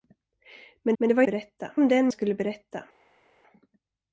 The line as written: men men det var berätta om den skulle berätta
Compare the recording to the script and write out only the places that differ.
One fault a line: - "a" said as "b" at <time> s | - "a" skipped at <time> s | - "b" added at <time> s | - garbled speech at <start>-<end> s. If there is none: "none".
none